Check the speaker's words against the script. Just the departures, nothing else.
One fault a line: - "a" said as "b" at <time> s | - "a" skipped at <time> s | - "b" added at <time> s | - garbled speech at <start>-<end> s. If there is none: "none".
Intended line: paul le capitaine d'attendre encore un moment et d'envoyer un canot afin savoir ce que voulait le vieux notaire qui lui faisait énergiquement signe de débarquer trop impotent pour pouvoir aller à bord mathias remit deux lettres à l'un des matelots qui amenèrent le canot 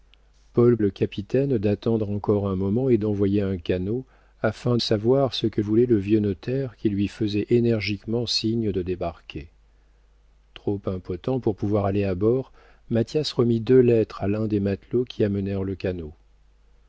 none